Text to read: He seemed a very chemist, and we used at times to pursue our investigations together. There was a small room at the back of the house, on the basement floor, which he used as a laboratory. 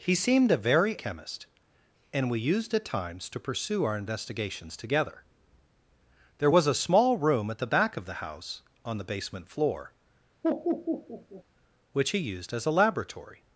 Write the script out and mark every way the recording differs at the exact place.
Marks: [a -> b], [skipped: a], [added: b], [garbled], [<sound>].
He seemed a very chemist, and we used at times to pursue our investigations together. There was a small room at the back of the house, on the basement floor, [laugh] which he used as a laboratory.